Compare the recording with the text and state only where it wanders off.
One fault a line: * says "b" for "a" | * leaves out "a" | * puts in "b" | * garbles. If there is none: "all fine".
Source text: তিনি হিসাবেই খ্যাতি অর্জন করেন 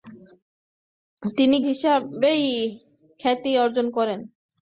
all fine